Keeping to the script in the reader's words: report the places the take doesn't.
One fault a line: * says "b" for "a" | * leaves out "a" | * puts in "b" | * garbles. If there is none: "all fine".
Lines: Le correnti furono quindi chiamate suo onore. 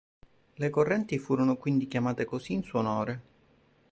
* puts in "così in"